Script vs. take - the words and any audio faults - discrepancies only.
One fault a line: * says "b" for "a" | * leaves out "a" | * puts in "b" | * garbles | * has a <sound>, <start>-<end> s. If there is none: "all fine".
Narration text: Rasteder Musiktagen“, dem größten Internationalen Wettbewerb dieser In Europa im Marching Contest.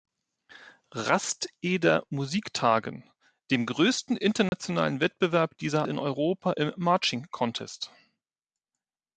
* has a dropout, 4.5-4.5 s